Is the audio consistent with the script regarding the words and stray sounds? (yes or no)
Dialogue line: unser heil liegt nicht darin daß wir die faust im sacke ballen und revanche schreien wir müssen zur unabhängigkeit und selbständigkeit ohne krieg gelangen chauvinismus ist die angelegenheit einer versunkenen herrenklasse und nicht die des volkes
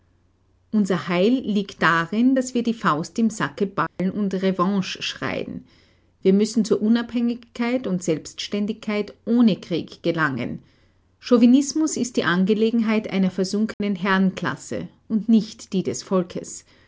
no